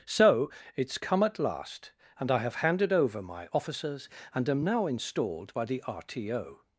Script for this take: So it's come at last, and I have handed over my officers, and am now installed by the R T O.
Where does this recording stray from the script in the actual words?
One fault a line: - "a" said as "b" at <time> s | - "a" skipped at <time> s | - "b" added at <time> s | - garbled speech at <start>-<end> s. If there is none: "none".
none